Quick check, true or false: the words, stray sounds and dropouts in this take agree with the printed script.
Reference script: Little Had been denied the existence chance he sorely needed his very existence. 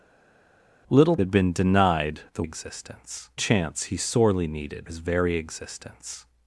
true